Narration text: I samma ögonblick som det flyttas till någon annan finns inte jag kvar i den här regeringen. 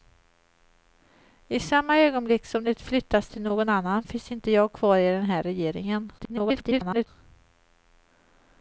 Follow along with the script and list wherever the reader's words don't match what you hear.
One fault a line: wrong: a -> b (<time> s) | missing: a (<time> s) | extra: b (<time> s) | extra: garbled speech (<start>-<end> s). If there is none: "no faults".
extra: garbled speech (6.2-7.1 s)